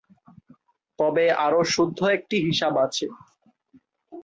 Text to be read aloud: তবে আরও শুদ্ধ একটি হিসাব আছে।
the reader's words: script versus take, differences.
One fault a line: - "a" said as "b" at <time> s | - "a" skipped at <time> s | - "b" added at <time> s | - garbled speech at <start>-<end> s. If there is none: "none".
none